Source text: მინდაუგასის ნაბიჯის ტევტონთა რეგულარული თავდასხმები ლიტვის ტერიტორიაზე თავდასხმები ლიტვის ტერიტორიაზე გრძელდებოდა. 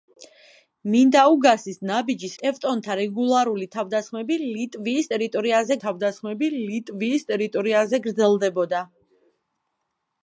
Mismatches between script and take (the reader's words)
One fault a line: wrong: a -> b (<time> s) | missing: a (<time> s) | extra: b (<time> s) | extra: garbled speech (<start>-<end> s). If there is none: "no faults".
no faults